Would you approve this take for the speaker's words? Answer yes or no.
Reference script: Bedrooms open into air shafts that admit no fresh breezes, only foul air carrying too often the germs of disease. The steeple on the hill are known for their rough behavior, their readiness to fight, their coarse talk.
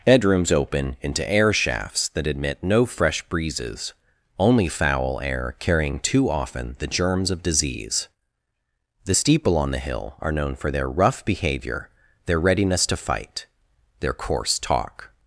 yes